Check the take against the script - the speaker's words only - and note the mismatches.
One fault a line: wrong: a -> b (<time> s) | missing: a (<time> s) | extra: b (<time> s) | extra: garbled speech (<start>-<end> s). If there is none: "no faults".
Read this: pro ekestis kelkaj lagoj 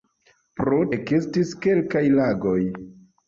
no faults